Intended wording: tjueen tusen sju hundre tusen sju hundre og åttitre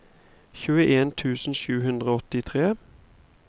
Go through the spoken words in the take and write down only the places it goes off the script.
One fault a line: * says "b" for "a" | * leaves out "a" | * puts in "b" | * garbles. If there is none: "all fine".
* leaves out "tusen sju hundre"